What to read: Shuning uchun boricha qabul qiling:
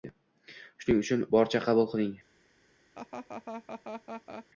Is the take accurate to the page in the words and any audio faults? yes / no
no